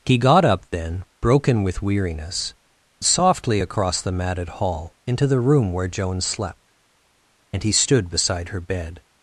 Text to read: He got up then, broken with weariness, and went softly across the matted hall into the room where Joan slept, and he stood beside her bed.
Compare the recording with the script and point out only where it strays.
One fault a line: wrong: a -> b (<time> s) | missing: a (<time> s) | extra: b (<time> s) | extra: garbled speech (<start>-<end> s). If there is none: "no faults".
missing: and went (2.5 s)